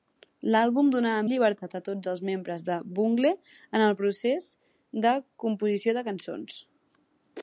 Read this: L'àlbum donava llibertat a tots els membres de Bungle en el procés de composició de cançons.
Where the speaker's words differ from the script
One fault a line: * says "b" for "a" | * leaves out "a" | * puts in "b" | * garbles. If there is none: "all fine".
all fine